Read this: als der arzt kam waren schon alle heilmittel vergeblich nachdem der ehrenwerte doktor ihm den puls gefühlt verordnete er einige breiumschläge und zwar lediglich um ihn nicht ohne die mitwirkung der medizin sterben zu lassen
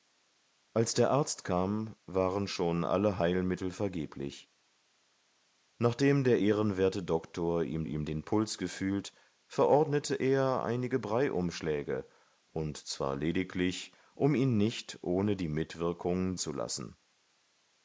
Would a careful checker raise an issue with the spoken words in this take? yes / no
yes